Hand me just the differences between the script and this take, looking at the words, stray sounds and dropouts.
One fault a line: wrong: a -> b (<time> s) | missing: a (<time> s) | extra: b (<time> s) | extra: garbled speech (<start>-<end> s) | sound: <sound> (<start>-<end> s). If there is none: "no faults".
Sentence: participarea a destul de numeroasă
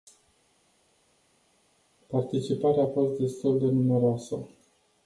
extra: fost (2.9 s)